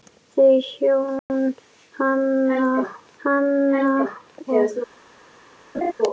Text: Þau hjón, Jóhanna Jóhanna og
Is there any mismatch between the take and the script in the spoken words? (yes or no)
no